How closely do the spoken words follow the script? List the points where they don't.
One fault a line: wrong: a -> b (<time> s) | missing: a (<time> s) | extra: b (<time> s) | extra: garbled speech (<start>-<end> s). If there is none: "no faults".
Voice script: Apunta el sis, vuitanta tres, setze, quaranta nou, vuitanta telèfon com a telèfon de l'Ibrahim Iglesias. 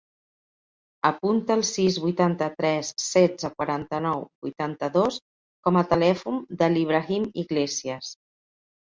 wrong: telèfon -> dos (4.9 s)